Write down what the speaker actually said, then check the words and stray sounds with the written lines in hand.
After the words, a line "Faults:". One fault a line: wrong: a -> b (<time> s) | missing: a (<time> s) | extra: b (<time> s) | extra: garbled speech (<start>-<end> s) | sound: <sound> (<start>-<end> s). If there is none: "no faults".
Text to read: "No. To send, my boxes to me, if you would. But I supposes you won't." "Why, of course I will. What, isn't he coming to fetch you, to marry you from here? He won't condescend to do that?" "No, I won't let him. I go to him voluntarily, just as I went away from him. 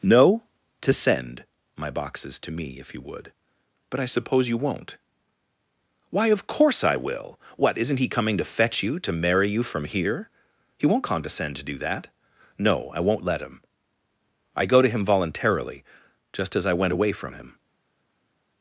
"No. To send, my boxes to me, if you would. But I suppose you won't." "Why, of course I will. What, isn't he coming to fetch you, to marry you from here? He won't condescend to do that?" "No, I won't let him. I go to him voluntarily, just as I went away from him.
Faults:
wrong: supposes -> suppose (4.0 s)